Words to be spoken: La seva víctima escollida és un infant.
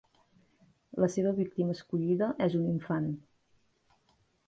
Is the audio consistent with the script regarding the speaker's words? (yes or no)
yes